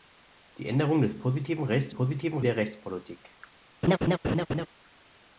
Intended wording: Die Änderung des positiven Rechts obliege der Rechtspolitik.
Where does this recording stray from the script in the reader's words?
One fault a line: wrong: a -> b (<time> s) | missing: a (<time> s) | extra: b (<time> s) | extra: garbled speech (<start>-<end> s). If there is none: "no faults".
wrong: obliege -> positiven (1.9 s)